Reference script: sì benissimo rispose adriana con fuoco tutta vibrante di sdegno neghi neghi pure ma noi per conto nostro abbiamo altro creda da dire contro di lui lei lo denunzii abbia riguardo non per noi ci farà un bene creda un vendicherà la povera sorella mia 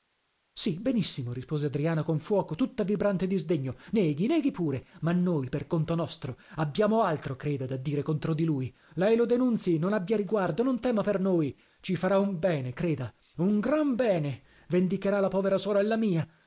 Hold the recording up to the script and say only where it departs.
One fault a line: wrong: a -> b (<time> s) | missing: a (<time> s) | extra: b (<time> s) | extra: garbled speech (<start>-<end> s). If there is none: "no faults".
extra: non (9.8 s)
extra: tema (10.8 s)
extra: gran bene (13.6 s)